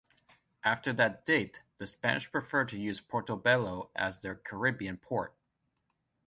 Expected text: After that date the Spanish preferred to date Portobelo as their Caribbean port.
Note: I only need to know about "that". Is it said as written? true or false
true